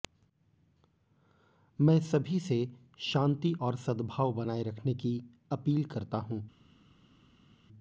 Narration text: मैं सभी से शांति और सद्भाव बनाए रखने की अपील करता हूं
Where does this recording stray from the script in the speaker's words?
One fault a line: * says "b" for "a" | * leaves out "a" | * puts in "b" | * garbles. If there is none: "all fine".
all fine